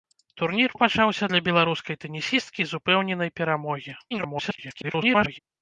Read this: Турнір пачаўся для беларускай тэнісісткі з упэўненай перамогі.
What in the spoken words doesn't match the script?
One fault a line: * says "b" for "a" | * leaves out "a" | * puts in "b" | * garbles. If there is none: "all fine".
* garbles